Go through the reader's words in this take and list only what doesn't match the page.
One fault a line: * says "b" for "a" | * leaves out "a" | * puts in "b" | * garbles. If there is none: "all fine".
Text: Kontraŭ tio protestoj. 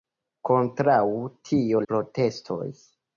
all fine